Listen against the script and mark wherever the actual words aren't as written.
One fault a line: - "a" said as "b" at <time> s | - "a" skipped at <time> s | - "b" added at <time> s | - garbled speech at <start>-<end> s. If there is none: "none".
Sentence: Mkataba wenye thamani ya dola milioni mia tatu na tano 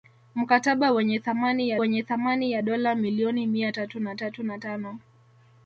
- "wenye thamani ya" added at 1.8 s
- "tatu na" added at 4.2 s